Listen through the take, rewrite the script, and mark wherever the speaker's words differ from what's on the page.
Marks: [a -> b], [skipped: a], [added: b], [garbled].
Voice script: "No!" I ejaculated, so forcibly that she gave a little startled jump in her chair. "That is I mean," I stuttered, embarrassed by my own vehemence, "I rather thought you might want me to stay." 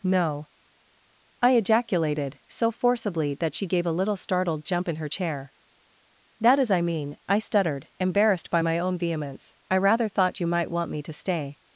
"No!" I ejaculated, so forcibly that she gave a little startled jump in her chair. "That is I mean," I stuttered, embarrassed by my own vehemence, "I rather thought you might want me to stay."